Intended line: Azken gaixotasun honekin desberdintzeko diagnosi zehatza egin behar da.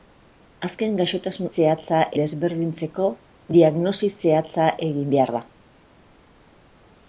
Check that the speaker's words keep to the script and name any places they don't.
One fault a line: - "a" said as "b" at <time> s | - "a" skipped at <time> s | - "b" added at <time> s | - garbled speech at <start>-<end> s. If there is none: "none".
- "honekin" said as "zehatza" at 1.6 s